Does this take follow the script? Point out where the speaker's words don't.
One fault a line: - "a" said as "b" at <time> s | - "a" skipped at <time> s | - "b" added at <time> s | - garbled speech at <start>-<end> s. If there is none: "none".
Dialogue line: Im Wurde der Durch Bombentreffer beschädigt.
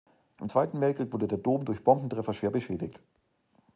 - "Zweiten Weltkrieg" added at 0.5 s
- "Dom" added at 1.4 s
- "schwer" added at 2.3 s